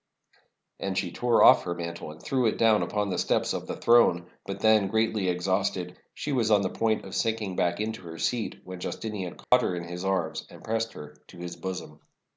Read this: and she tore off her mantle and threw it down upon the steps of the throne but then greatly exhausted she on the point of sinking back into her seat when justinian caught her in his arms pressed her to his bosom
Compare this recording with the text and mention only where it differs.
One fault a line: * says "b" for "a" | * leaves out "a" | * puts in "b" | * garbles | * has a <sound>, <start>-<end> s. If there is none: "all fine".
* puts in "was"
* has a dropout, 9.4-9.5 s
* puts in "and"